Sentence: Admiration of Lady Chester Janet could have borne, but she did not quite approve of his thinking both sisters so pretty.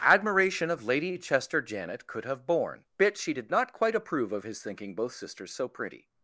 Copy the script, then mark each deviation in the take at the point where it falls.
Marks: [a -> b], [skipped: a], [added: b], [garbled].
Admiration of Lady Chester Janet could have borne, [but -> bit] she did not quite approve of his thinking both sisters so pretty.